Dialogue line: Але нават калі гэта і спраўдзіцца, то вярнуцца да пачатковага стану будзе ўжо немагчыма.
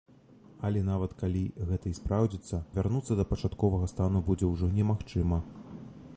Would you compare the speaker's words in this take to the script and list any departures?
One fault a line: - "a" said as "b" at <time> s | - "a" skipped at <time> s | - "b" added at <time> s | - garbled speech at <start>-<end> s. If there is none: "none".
- "то" skipped at 2.6 s